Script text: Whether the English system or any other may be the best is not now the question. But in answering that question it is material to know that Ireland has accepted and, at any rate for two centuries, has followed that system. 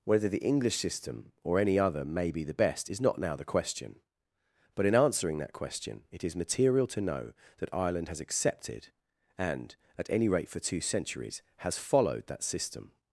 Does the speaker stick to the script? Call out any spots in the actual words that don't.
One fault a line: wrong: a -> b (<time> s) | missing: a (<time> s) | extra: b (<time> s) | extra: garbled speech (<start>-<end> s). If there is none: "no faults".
no faults